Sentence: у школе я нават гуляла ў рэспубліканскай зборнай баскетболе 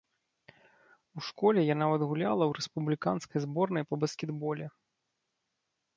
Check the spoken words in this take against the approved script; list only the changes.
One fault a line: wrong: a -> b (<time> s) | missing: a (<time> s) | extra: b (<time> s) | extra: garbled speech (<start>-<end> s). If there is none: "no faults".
extra: па (3.9 s)